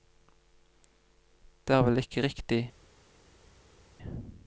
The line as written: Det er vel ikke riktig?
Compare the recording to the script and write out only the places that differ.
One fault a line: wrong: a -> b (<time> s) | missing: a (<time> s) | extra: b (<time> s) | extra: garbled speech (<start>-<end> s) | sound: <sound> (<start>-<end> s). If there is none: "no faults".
no faults